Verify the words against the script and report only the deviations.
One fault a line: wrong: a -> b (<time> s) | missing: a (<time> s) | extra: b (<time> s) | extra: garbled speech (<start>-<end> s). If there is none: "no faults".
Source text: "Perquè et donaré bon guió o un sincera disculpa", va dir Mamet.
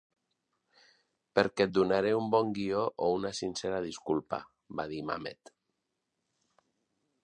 extra: un (2.2 s)
wrong: un -> una (3.2 s)